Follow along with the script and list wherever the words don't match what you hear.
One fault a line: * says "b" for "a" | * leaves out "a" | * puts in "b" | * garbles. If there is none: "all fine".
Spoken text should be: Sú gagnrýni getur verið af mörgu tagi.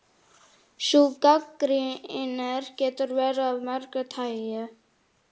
all fine